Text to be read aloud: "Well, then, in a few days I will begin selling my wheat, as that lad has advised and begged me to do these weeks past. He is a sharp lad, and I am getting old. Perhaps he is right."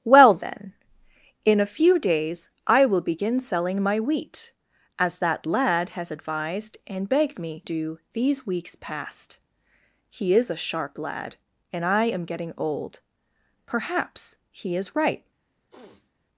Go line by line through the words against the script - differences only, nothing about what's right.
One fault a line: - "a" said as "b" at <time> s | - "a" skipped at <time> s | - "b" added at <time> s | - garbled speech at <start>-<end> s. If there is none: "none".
- "to" skipped at 7.7 s